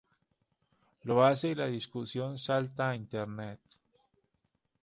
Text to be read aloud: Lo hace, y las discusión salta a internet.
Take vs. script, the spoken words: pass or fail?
fail